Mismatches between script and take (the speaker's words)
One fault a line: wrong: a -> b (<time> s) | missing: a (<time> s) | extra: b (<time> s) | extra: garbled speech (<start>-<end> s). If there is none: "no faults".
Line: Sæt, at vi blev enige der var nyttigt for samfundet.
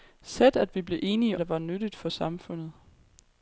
no faults